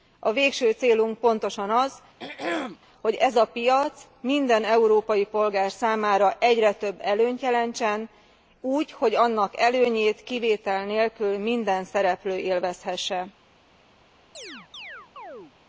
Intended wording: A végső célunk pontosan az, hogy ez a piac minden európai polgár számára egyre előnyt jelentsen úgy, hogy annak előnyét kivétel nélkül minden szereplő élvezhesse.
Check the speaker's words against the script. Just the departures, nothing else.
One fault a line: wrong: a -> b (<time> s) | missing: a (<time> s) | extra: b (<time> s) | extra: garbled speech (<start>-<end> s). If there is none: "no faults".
extra: több (6.7 s)